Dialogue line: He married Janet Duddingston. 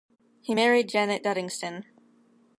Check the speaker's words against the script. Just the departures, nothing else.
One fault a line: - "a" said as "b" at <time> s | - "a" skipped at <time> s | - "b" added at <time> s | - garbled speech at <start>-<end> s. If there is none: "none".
none